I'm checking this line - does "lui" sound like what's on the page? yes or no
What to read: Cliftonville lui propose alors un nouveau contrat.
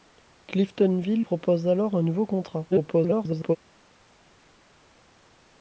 no